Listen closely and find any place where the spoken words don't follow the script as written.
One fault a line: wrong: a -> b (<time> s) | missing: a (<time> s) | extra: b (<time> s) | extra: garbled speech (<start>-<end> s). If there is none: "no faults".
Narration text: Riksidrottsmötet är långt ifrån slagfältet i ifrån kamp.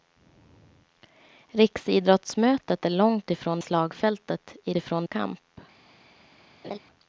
no faults